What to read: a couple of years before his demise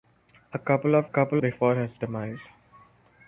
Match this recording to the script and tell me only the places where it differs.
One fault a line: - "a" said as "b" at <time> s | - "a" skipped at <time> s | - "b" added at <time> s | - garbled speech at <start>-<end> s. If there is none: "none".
- "years" said as "couple" at 1.0 s